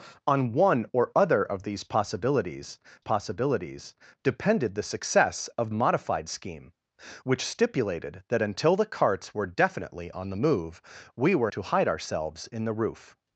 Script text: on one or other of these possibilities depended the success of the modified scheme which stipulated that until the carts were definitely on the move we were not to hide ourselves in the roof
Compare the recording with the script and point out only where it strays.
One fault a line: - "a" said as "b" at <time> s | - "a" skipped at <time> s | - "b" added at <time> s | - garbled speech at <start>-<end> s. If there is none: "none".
- "possibilities" added at 3.0 s
- "the" skipped at 5.7 s
- "not" skipped at 11.5 s